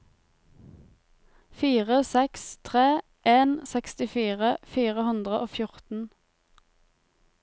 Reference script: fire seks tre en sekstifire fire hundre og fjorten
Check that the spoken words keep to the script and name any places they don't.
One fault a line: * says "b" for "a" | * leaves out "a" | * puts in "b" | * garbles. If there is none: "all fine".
all fine